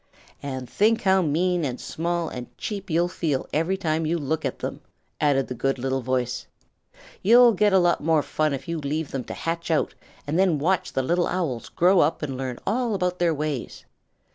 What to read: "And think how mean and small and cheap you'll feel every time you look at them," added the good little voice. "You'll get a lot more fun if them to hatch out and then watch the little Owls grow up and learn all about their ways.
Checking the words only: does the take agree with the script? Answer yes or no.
no